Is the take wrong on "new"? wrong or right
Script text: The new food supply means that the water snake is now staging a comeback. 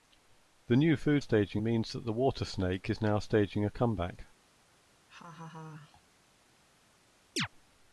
right